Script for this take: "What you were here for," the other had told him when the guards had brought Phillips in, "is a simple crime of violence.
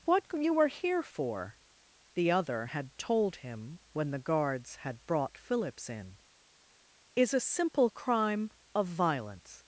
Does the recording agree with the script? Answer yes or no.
yes